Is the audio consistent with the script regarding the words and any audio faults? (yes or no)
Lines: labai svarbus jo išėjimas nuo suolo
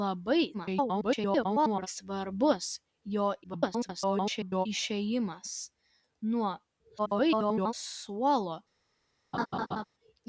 no